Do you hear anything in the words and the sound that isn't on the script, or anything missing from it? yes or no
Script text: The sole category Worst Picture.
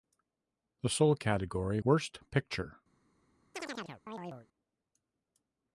yes